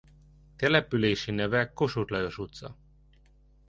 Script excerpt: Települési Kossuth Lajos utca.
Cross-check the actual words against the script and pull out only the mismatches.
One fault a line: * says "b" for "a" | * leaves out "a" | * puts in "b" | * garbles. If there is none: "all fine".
* puts in "neve"